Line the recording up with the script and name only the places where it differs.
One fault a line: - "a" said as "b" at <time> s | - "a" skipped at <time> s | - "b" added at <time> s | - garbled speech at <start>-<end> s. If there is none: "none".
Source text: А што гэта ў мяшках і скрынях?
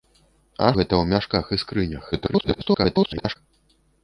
- "што" skipped at 0.7 s
- garbled speech at 2.1-3.4 s